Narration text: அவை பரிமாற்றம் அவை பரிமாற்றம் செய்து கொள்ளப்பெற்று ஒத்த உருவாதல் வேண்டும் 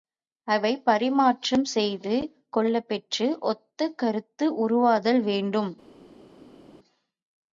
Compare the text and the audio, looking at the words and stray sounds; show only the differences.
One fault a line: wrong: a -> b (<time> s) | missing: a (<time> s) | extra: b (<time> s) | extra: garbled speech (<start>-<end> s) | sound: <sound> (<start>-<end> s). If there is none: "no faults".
missing: அவை பரிமாற்றம் (1.6 s)
extra: கருத்து (4.0 s)